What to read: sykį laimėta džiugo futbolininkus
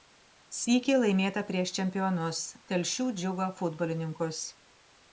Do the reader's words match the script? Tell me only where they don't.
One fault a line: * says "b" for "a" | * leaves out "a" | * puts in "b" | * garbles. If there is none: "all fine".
* puts in "prieš čempionus telšių"